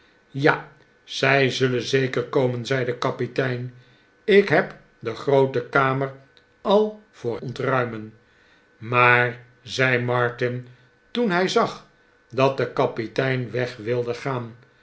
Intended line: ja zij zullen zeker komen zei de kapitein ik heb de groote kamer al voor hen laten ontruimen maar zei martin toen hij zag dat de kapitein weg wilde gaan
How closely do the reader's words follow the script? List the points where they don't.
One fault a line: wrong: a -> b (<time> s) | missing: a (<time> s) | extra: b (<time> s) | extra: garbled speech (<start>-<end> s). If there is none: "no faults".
missing: hen laten (7.4 s)